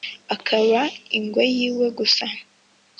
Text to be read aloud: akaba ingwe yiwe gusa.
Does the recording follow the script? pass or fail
pass